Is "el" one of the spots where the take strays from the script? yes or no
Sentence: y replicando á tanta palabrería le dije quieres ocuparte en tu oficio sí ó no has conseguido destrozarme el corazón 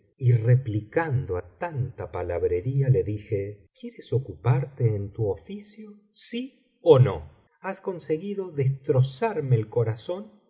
no